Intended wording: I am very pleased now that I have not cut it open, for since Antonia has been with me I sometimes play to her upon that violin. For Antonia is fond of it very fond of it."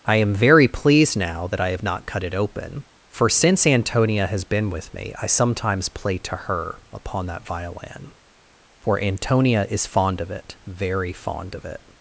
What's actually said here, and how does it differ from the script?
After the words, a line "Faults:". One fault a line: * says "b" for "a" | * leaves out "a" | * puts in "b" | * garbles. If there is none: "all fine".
I am very pleased now that I have not cut it open, for since Antonia has been with me I sometimes play to her upon that violin. For Antonia is fond of it very fond of it."
Faults:
all fine